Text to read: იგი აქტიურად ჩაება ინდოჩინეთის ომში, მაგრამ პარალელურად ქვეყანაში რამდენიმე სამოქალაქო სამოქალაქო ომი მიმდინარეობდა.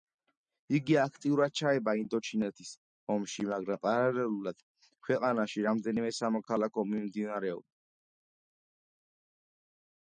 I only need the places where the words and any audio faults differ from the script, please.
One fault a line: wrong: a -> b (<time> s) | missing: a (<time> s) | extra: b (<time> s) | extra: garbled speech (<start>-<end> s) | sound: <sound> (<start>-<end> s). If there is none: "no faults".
missing: სამოქალაქო (6.9 s)